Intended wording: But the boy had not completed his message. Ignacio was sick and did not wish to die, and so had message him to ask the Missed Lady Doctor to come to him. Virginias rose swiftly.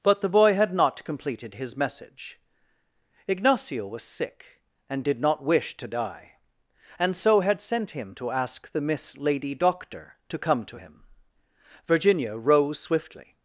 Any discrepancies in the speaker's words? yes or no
yes